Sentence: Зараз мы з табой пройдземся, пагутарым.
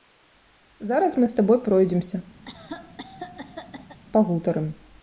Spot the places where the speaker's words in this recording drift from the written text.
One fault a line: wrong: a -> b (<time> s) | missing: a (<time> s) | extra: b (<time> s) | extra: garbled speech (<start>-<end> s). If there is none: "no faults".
no faults